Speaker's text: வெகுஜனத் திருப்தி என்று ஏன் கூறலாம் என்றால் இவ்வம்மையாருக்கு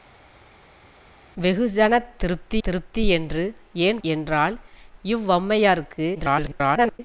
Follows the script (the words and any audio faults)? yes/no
no